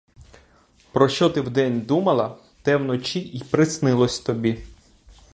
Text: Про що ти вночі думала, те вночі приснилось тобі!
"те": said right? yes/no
yes